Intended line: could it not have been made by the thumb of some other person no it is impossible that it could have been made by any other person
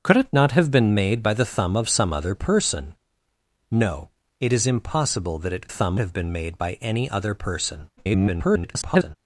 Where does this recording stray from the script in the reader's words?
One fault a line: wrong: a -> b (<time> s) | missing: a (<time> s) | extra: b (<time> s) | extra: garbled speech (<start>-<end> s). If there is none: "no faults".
wrong: could -> thumb (5.7 s)
extra: garbled speech (8.0-9.2 s)